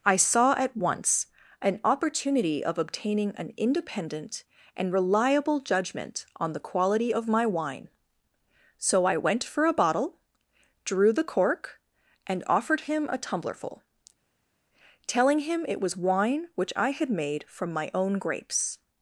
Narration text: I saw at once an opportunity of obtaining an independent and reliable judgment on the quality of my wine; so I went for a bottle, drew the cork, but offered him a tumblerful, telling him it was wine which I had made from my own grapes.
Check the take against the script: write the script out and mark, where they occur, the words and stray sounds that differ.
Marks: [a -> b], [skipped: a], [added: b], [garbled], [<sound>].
I saw at once an opportunity of obtaining an independent and reliable judgment on the quality of my wine; so I went for a bottle, drew the cork, [but -> and] offered him a tumblerful, telling him it was wine which I had made from my own grapes.